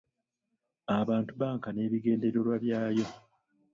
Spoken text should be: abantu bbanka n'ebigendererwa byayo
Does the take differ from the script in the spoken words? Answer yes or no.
no